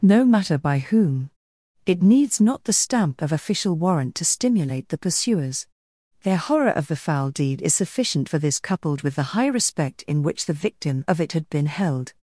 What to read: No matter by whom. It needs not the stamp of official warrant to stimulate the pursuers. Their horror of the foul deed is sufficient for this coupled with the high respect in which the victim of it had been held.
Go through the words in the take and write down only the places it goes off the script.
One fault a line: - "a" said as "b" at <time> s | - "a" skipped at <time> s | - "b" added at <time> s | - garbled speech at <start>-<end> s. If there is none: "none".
none